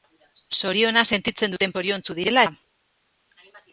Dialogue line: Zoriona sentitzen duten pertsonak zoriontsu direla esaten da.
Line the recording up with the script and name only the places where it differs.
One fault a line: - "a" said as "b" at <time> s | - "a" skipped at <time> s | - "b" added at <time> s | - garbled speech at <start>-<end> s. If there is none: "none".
- "pertsonak" skipped at 1.8 s
- "esaten" skipped at 2.5 s